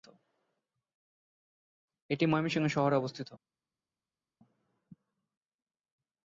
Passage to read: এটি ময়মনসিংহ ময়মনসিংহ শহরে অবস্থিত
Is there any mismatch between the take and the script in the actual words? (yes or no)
yes